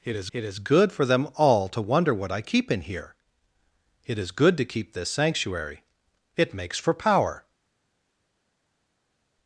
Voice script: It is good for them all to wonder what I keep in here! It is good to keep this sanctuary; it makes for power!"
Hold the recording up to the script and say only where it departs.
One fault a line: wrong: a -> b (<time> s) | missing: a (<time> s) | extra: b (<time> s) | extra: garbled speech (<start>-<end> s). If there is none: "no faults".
extra: it is (0.3 s)